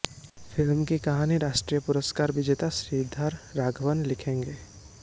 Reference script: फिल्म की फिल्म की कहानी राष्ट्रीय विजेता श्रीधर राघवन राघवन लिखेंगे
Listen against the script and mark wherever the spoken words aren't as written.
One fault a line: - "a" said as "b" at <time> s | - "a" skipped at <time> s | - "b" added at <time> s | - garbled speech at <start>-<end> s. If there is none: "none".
- "फिल्म की" skipped at 1.0 s
- "पुरस्कार" added at 1.8 s
- "राघवन" skipped at 4.0 s